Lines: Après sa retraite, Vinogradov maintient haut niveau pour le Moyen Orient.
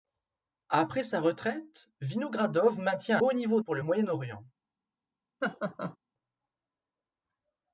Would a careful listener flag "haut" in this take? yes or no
no